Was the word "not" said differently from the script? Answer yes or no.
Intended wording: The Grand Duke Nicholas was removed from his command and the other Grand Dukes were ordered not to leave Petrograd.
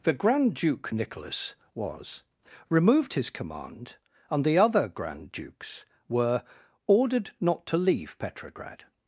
no